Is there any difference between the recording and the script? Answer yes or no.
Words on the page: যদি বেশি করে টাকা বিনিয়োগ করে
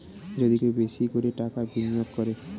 yes